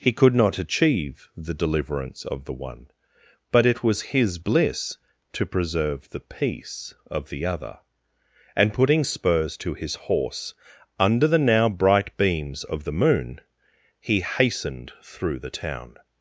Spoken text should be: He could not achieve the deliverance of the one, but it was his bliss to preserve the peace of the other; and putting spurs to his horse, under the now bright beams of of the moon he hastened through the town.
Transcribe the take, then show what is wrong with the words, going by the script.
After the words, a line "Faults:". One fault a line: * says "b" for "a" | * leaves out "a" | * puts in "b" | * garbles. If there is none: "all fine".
He could not achieve the deliverance of the one, but it was his bliss to preserve the peace of the other; and putting spurs to his horse, under the now bright beams of the moon he hastened through the town.
Faults:
* leaves out "of"